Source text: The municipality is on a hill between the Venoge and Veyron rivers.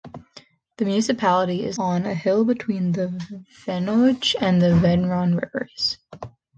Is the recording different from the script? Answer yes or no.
no